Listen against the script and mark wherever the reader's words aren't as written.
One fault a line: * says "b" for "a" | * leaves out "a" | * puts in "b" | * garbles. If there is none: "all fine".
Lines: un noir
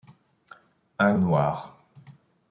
all fine